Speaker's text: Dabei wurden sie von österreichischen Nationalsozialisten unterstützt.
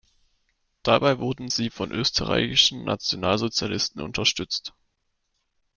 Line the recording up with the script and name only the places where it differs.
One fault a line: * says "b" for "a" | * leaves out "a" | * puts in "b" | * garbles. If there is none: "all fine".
all fine